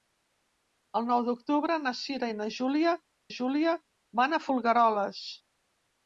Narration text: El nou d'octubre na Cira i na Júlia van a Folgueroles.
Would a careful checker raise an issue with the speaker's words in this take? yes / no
yes